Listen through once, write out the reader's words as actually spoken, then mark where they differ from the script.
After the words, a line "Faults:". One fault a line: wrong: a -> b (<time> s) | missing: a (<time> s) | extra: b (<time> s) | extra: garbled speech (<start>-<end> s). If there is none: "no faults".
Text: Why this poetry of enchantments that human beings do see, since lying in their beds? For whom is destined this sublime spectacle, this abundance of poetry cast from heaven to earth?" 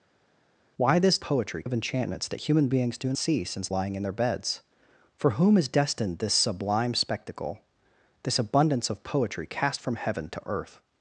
Why this poetry of enchantments that human beings do see, since lying in their beds? For whom is destined this sublime spectacle, this abundance of poetry cast from heaven to earth?"
Faults:
no faults